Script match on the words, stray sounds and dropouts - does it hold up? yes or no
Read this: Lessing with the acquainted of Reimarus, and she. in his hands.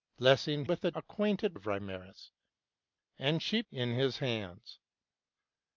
yes